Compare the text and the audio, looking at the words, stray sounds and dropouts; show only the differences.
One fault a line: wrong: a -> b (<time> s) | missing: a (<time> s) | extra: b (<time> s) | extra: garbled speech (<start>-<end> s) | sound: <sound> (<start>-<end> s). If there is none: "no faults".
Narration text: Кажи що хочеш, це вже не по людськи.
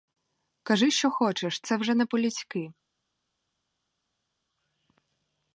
no faults